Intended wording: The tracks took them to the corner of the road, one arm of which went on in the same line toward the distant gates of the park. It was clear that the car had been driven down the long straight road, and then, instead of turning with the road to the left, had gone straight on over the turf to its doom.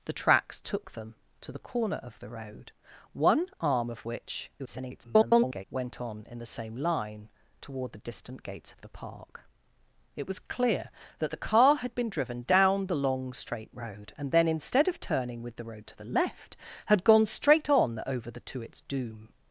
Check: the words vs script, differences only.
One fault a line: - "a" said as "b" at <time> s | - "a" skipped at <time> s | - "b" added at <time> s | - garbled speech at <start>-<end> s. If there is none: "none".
- garbled speech at 4.6-5.6 s
- "turf" skipped at 18.4 s